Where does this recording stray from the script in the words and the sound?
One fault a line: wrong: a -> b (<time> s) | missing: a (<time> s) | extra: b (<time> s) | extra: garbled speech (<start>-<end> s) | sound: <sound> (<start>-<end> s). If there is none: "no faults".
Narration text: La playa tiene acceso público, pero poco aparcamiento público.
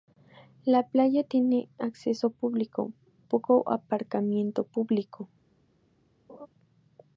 missing: pero (2.9 s)
sound: laugh (6.3-6.5 s)